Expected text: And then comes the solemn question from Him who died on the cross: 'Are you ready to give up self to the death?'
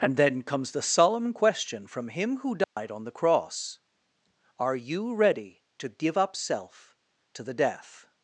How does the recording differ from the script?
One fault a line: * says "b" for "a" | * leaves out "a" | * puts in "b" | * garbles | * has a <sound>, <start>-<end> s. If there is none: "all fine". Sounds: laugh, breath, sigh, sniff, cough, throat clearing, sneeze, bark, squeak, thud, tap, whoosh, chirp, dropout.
* has a dropout, 2.6-2.8 s